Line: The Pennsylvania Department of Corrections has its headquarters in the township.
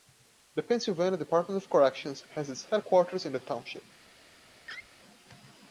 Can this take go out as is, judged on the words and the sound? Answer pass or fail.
fail